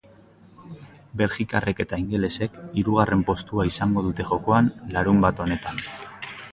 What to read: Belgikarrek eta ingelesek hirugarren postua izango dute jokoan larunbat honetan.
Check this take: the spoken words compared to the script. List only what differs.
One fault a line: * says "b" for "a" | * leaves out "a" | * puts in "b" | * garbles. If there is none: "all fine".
all fine